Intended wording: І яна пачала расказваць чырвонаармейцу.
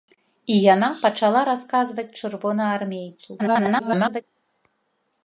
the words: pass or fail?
fail